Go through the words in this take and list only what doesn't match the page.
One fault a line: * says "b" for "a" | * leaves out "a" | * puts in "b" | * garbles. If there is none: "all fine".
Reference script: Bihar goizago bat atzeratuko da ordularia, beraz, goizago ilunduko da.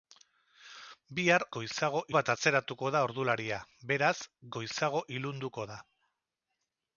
all fine